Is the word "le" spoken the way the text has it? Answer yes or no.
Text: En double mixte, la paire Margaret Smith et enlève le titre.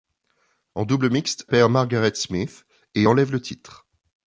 yes